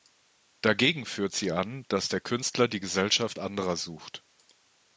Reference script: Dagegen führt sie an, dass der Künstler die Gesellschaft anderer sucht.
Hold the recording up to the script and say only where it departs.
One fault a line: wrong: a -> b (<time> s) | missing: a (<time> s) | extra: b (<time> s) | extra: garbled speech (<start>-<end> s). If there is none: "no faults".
no faults